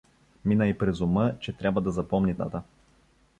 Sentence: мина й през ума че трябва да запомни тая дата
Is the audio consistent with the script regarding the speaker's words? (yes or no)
no